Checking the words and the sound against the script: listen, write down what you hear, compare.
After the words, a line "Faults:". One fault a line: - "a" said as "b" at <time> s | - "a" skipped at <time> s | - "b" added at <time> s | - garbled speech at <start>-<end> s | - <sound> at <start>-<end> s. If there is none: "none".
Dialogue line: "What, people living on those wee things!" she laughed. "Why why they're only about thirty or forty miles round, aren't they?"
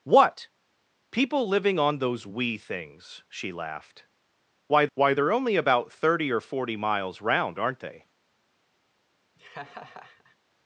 "What, people living on those wee things!" she laughed. "Why why they're only about thirty or forty miles round, aren't they?"
Faults:
- laugh at 9.4-10.4 s